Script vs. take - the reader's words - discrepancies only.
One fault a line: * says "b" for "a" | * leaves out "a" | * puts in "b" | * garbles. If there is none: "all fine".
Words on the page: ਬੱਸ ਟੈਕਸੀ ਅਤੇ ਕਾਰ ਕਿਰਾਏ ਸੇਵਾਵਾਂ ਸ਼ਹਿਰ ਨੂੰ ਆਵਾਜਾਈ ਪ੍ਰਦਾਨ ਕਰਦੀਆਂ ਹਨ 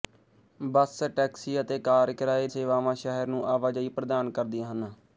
all fine